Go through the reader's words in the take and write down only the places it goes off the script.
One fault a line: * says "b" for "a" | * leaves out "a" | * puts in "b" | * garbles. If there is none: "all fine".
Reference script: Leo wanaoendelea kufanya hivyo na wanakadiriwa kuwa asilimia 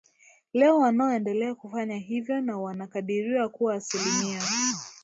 all fine